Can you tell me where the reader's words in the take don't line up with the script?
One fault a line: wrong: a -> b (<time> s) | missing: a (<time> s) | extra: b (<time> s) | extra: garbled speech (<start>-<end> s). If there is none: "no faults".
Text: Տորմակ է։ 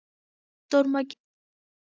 no faults